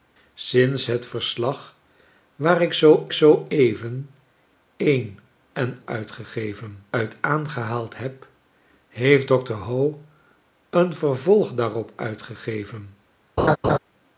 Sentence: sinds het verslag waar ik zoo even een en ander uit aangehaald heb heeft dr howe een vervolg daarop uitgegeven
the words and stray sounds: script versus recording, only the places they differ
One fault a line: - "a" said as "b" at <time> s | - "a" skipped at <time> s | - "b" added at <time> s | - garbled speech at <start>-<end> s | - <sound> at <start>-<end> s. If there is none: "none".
- "zoo" added at 3.1 s
- "ander" said as "uitgegeven" at 5.8 s
- laugh at 13.4-13.8 s